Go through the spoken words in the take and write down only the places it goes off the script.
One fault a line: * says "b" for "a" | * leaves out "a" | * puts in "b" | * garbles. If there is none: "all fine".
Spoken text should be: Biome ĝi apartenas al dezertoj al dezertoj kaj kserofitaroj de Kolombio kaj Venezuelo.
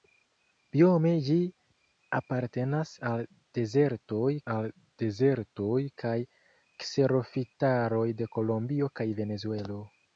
all fine